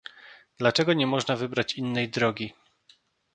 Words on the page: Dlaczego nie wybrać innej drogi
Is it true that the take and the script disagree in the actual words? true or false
true